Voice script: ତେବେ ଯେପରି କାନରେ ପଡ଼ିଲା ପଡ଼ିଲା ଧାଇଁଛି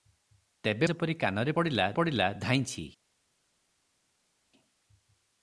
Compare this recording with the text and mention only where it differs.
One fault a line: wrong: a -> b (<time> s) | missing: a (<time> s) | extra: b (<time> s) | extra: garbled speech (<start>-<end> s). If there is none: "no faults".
no faults